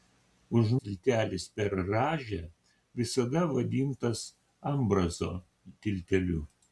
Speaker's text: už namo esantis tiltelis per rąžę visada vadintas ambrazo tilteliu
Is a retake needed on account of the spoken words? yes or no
yes